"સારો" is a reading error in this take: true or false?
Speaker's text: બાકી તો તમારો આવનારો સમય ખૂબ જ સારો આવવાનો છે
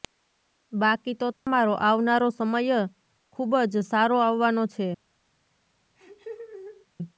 false